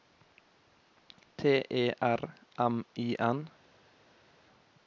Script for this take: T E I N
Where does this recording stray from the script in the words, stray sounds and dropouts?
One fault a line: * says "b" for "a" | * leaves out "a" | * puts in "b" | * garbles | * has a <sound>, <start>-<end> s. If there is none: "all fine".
* puts in "R M"